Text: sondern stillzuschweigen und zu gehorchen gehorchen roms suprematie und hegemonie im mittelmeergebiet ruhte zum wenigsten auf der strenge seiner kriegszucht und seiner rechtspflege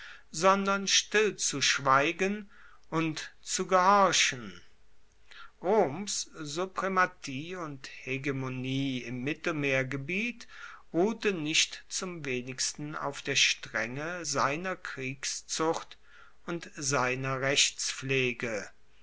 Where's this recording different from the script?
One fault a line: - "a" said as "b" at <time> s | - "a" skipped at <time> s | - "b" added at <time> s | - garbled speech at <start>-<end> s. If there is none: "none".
- "gehorchen" skipped at 4.6 s
- "nicht" added at 11.3 s